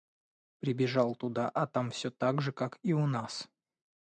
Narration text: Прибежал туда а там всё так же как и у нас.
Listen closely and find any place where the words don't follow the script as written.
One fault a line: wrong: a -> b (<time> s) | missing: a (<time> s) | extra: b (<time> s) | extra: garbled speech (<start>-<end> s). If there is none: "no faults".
no faults